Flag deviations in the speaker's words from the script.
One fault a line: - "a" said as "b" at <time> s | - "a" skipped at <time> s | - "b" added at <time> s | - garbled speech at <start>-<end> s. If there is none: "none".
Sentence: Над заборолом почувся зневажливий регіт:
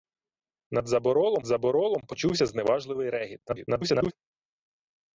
- "заборолом" added at 1.4 s
- garbled speech at 3.5-4.1 s